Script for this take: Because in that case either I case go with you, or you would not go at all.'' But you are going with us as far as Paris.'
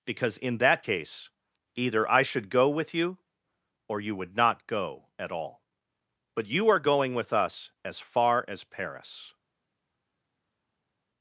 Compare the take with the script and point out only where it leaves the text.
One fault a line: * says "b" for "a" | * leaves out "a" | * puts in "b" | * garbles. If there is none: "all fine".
* says "should" for "case"